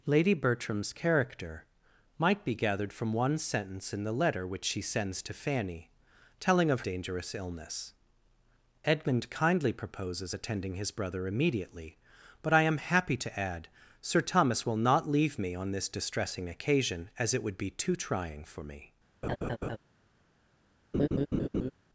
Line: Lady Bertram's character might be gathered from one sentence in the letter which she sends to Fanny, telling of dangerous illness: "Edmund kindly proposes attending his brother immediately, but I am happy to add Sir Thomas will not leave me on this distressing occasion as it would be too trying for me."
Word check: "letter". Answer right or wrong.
right